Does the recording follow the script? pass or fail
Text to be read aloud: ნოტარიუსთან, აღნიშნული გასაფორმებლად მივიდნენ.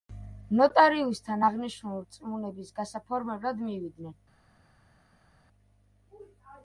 fail